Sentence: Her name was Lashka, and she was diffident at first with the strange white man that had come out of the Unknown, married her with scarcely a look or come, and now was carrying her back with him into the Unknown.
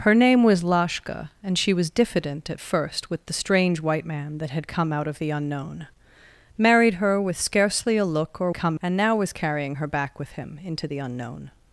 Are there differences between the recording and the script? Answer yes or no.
no